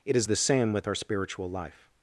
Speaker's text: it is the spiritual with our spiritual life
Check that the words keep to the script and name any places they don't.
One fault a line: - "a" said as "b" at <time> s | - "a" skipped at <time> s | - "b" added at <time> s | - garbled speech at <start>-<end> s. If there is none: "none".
- "spiritual" said as "same" at 0.3 s